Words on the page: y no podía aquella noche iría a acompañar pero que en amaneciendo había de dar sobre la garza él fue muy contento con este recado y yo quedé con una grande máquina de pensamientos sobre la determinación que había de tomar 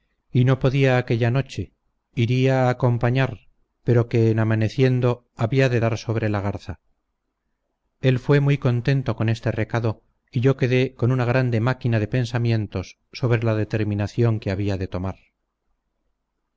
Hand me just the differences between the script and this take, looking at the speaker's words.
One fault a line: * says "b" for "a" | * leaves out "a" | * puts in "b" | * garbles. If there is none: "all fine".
all fine